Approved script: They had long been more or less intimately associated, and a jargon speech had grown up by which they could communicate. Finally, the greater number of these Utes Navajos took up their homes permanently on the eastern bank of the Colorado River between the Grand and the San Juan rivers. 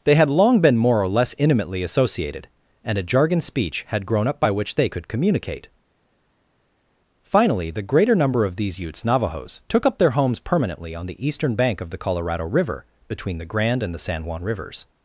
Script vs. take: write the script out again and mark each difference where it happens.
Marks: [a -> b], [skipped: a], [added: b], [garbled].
They had long been more or less intimately associated, and a jargon speech had grown up by which they could communicate. Finally, the greater number of these Utes Navajos took up their homes permanently on the eastern bank of the Colorado River between the Grand and the San Juan rivers.